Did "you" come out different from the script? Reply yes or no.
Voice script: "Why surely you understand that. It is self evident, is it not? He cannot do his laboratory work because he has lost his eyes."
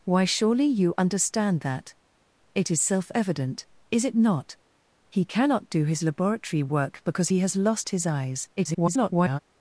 no